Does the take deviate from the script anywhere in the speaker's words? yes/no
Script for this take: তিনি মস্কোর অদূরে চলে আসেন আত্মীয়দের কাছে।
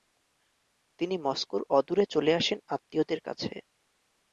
no